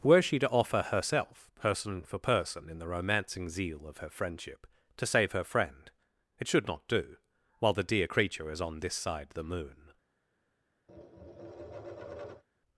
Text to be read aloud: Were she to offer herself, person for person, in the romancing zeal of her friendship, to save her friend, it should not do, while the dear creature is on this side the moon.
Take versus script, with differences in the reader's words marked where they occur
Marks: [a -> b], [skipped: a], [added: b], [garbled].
Were she to offer herself, person for person, in the romancing zeal of her friendship, to save her friend, it should not do, while the dear creature is on this side the moon.